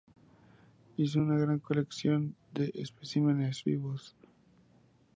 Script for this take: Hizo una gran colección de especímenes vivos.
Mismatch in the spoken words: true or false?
false